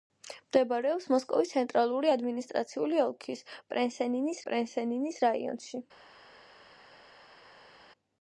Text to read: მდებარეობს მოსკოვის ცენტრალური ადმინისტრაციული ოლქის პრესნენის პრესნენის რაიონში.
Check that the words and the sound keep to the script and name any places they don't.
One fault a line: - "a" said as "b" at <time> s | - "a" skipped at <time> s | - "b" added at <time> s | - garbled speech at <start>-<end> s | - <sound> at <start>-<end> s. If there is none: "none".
none